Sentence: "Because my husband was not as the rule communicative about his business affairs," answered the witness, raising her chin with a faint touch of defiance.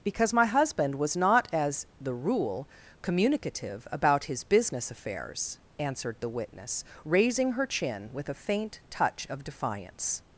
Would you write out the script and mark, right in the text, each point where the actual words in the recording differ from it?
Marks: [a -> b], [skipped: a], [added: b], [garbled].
"Because my husband was not as the rule communicative about his business affairs," answered the witness, raising her chin with a faint touch of defiance.